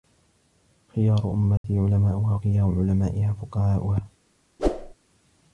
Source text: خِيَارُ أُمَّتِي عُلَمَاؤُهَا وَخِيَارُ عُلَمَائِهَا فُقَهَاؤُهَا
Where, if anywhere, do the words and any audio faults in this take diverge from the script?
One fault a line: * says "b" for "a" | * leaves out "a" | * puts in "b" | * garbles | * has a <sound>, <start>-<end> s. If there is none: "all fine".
* has a dropout, 1.6-1.6 s
* has a whoosh, 4.6-4.9 s